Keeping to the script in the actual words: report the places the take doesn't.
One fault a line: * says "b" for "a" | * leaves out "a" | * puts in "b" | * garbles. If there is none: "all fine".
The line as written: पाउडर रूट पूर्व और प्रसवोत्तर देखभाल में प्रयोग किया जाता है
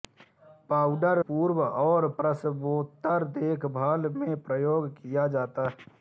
* leaves out "रूट"